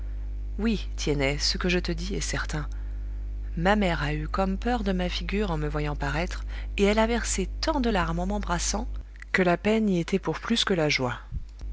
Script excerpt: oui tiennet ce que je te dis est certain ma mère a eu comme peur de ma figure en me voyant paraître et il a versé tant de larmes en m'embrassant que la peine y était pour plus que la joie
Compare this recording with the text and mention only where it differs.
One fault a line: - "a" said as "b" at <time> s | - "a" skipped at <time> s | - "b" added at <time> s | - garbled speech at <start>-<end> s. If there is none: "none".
- "il" said as "elle" at 6.8 s